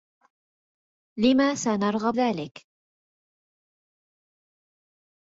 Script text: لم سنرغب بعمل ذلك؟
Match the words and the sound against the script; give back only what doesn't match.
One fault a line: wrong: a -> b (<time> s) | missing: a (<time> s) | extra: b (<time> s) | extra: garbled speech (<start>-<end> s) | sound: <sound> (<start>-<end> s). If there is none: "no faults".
missing: بعمل (2.1 s)